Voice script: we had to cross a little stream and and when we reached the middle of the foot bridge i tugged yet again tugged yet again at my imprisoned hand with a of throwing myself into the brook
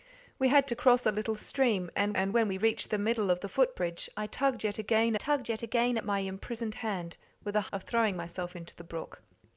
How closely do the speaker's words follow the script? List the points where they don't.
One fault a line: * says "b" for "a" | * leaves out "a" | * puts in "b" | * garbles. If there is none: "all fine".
all fine